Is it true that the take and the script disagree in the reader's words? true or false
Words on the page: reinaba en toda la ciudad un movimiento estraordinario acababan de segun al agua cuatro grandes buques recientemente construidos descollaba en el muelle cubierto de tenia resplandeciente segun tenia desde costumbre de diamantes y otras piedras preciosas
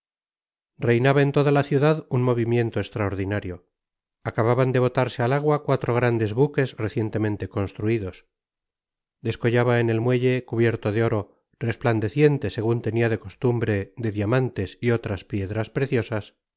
true